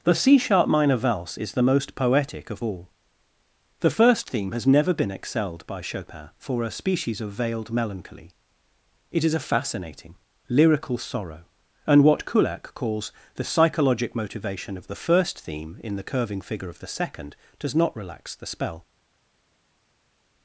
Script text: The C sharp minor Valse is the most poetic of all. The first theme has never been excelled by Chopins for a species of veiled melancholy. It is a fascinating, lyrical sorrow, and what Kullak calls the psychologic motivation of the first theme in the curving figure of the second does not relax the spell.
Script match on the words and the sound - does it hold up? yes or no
no